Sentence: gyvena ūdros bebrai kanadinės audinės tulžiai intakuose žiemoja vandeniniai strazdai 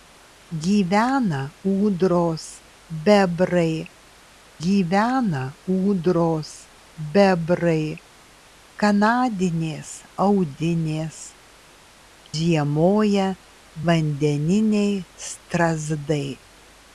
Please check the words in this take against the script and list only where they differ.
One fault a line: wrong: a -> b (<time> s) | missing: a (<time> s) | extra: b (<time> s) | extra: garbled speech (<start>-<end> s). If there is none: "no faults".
extra: gyvena ūdros bebrai (4.6 s)
missing: tulžiai intakuose (11.2 s)